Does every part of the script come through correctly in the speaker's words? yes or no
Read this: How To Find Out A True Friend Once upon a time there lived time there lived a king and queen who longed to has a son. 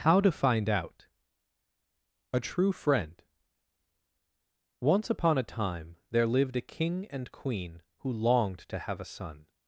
no